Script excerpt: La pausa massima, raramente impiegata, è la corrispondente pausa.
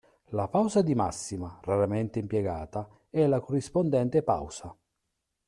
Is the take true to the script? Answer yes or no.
no